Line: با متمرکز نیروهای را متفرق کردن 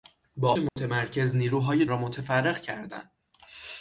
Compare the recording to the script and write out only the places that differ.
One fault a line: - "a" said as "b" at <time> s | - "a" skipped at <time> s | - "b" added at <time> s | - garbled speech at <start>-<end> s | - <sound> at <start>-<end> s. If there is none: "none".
- dropout at 0.7-0.8 s